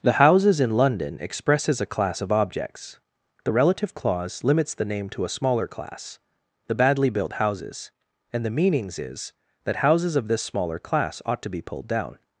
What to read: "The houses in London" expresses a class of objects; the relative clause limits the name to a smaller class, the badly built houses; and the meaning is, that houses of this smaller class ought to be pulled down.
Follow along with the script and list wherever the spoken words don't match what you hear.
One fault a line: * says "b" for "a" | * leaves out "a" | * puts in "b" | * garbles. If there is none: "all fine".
* says "meanings" for "meaning"